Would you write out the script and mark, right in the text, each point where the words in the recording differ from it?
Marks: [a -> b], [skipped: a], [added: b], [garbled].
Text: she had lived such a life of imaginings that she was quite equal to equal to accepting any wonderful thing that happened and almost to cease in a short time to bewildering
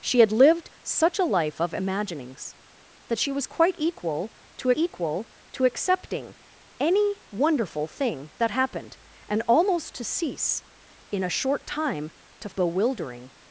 she had lived such a life of imaginings that she was quite equal to equal to accepting any wonderful thing that happened and almost to cease in a short time to bewildering